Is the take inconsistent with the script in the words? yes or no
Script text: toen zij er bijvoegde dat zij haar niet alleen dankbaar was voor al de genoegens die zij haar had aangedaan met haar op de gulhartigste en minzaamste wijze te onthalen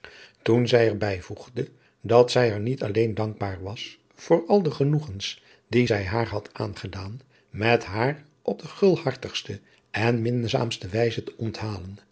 no